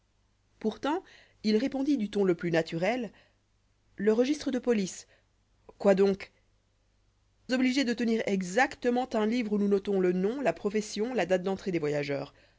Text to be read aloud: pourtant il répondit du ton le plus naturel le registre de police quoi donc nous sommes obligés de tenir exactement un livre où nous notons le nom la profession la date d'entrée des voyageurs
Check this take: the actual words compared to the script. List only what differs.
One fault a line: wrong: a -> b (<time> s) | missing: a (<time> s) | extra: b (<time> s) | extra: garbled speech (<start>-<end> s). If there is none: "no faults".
missing: nous sommes (6.3 s)